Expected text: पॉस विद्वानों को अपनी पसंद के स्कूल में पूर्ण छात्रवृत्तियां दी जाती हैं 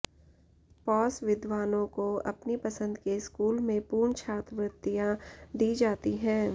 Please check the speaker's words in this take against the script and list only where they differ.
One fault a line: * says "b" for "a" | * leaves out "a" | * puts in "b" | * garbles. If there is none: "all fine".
all fine